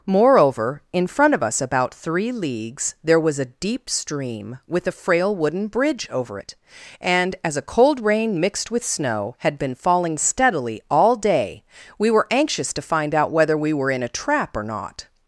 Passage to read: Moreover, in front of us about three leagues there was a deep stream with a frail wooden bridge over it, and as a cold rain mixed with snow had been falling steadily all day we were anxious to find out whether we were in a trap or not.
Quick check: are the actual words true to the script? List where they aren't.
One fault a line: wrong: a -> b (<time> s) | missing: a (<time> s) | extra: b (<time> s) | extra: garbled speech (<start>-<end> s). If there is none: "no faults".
no faults